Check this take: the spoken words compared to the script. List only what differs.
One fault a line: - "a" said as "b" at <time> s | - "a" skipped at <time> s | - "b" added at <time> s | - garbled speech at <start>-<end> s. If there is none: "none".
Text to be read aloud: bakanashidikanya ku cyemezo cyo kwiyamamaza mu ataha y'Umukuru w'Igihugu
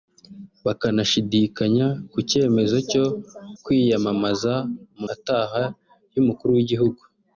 none